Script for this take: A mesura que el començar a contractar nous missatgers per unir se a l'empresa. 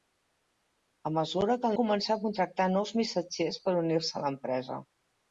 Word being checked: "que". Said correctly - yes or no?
yes